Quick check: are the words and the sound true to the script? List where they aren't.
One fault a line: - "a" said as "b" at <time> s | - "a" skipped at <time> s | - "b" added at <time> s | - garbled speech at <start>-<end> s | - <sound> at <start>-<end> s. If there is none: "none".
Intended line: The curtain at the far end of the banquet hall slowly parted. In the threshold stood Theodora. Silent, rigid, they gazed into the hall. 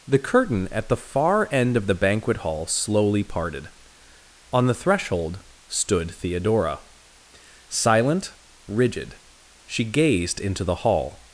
- "In" said as "On" at 4.5 s
- "they" said as "she" at 9.7 s